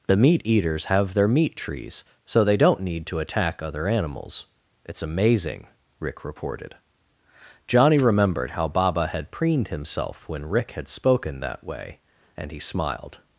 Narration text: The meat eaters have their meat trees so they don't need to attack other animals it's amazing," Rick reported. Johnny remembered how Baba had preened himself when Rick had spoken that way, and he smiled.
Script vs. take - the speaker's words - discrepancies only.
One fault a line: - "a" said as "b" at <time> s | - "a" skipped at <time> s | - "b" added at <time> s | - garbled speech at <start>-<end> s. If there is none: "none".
none